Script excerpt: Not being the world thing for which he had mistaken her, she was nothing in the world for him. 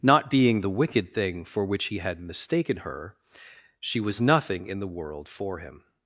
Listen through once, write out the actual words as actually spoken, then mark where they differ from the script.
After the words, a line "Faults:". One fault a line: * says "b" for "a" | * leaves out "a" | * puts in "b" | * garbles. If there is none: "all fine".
Not being the wicked thing for which he had mistaken her, she was nothing in the world for him.
Faults:
* says "wicked" for "world"